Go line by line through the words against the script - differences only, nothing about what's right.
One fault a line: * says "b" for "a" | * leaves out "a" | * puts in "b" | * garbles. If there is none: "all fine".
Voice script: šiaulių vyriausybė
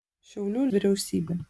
all fine